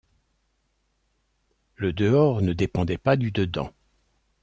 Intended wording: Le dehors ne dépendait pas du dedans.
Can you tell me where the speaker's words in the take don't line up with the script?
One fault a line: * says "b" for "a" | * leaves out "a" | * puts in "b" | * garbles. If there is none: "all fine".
all fine